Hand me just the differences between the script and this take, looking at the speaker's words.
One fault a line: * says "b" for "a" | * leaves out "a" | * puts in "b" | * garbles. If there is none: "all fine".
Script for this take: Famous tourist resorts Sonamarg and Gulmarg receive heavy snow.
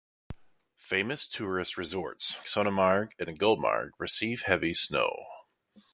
all fine